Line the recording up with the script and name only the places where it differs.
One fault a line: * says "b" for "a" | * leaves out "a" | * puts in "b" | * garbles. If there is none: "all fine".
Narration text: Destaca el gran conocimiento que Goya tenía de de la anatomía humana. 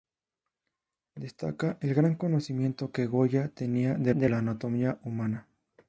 all fine